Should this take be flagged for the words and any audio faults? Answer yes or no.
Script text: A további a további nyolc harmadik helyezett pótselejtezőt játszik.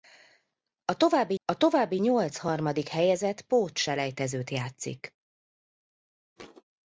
yes